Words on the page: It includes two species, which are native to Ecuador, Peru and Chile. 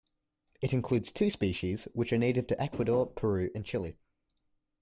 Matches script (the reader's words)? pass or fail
pass